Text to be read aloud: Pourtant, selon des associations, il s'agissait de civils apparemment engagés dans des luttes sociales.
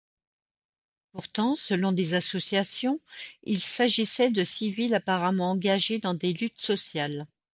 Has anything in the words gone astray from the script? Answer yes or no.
no